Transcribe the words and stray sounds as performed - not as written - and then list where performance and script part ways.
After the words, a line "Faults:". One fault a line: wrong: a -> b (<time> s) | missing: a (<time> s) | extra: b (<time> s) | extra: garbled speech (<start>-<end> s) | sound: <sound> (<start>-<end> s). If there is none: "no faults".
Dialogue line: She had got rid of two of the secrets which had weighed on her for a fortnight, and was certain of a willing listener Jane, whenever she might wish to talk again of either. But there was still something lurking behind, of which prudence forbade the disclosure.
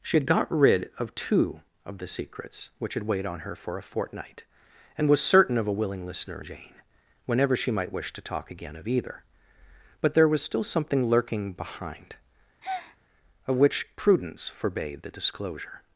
She had got rid of two of the secrets which had weighed on her for a fortnight, and was certain of a willing listener Jane, whenever she might wish to talk again of either. But there was still something lurking behind, of which prudence forbade the disclosure.
Faults:
sound: breath (12.6-13.0 s)